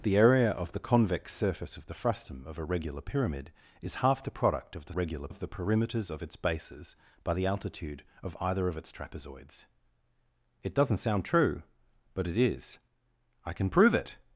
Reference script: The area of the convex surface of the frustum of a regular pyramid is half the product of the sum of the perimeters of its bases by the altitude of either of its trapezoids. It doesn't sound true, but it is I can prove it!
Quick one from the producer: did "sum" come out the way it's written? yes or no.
no